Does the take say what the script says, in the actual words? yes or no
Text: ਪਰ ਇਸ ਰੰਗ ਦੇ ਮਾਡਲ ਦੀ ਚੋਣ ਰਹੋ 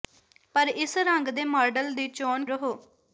yes